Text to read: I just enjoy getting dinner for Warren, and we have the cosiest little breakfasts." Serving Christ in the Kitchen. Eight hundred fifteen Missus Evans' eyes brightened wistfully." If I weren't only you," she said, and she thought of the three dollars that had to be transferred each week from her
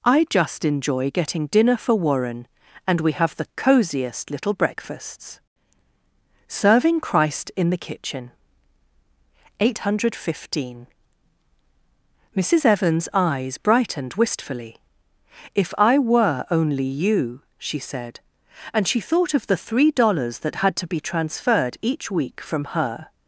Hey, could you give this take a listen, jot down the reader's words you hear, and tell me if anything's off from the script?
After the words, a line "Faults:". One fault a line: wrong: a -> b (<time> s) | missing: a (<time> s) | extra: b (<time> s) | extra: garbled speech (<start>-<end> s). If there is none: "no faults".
I just enjoy getting dinner for Warren, and we have the cosiest little breakfasts." Serving Christ in the Kitchen. Eight hundred fifteen Missus Evans' eyes brightened wistfully." If I were only you," she said, and she thought of the three dollars that had to be transferred each week from her
Faults:
wrong: weren't -> were (16.0 s)